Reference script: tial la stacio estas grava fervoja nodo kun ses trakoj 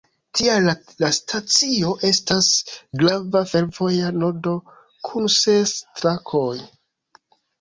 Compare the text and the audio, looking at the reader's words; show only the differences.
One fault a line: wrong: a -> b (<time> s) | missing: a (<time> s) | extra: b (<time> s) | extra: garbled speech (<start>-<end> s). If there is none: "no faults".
no faults